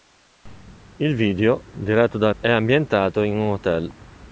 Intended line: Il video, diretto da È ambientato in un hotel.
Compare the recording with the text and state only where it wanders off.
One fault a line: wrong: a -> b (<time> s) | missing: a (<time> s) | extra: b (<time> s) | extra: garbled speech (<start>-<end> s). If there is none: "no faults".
no faults